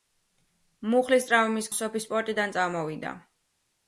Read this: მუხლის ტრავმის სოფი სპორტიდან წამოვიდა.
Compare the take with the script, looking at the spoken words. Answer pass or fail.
pass